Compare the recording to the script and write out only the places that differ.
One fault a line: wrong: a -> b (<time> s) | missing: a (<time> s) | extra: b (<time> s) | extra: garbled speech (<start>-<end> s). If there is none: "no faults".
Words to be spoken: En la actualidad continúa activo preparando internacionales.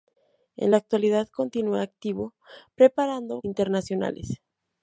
no faults